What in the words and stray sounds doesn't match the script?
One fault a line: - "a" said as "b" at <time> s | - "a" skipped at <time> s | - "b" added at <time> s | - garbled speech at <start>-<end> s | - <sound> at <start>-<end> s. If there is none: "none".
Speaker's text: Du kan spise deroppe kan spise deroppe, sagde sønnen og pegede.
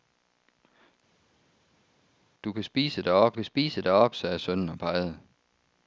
none